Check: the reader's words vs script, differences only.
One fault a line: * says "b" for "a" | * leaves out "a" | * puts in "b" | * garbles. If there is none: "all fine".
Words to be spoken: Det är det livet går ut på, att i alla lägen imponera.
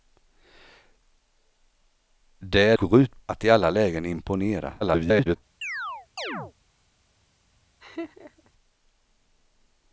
* leaves out "det livet"
* leaves out "på"
* garbles